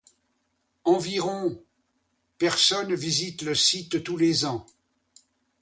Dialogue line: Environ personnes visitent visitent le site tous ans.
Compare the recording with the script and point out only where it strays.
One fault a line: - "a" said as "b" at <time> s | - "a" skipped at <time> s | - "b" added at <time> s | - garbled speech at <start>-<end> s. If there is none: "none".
- "visitent" skipped at 3.4 s
- "les" added at 4.2 s